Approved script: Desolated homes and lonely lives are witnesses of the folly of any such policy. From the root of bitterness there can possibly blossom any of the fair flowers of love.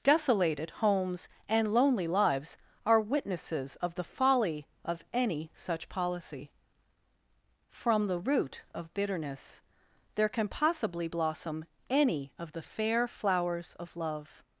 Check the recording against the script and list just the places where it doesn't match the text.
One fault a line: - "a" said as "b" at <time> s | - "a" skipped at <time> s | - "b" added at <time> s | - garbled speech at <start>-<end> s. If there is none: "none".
none